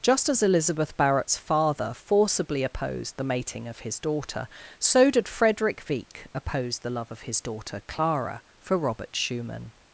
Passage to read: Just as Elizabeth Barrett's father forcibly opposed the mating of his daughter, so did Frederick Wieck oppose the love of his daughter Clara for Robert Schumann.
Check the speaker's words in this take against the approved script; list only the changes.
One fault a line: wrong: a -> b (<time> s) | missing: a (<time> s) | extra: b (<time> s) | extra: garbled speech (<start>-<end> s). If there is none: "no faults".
no faults